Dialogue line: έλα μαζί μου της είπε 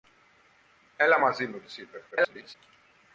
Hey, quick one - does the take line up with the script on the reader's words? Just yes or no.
no